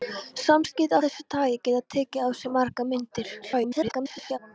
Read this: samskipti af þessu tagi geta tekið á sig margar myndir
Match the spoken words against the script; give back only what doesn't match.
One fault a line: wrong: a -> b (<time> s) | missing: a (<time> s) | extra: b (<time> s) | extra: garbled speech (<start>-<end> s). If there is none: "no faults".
missing: af (1.0 s)
extra: garbled speech (3.4-4.4 s)